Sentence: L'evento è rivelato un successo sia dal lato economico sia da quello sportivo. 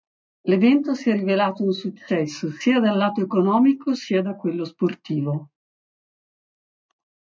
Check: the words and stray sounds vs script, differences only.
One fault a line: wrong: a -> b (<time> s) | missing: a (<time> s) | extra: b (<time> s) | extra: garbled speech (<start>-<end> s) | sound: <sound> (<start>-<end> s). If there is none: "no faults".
extra: si (0.9 s)